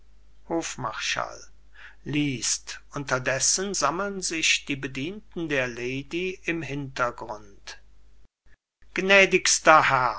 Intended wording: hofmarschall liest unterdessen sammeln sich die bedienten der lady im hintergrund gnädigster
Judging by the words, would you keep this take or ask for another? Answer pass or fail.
pass